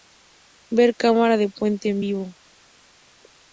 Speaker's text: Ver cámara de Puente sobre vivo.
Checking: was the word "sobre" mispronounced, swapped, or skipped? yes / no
yes